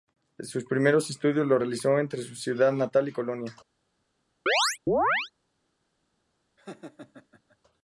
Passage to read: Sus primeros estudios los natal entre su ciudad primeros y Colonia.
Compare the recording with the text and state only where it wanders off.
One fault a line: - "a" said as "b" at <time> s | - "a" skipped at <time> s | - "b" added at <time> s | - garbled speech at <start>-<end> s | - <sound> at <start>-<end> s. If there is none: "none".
- "natal" said as "realizó" at 1.6 s
- "primeros" said as "natal" at 2.7 s
- chirp at 4.5-5.3 s
- laugh at 6.6-7.6 s